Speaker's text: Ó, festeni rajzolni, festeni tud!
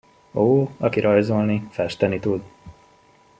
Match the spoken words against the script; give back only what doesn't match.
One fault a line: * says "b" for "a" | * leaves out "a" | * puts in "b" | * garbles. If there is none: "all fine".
* says "aki" for "festeni"